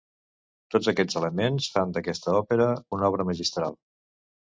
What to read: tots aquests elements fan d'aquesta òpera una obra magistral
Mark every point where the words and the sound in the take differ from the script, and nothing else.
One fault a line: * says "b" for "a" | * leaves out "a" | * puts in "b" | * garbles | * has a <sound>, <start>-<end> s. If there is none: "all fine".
all fine